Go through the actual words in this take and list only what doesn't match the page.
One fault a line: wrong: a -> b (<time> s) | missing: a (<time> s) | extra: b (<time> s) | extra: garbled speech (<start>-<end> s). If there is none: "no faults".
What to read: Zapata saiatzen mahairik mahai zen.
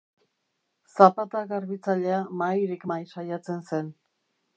wrong: saiatzen -> garbitzailea (1.5 s)
extra: saiatzen (3.1 s)